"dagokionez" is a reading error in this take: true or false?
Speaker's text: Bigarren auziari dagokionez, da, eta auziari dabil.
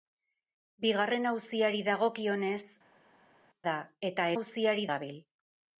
false